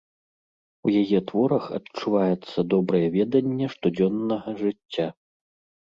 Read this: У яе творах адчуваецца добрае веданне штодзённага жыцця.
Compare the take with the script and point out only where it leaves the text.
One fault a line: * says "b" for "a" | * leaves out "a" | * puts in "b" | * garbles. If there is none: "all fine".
all fine